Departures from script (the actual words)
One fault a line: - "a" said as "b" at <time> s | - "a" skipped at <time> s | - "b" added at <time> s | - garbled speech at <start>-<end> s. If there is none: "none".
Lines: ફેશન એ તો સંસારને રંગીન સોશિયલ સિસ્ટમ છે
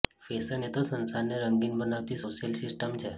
- "બનાવતી" added at 1.8 s